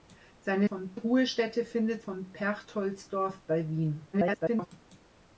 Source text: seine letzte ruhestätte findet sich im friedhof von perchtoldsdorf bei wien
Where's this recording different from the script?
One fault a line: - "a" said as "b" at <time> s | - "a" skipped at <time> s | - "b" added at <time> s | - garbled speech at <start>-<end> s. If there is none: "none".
- "letzte" said as "von" at 0.6 s
- "sich im friedhof" skipped at 2.0 s
- garbled speech at 4.1-4.7 s